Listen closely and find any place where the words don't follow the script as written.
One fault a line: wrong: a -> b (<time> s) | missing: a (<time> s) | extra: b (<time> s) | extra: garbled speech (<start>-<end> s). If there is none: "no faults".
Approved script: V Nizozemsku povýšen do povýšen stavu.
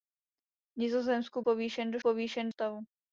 no faults